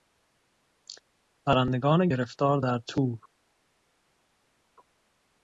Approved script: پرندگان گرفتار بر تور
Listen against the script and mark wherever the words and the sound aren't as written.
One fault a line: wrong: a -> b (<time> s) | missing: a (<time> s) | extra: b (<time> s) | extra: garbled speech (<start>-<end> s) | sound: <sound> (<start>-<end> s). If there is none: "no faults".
wrong: بر -> در (2.6 s)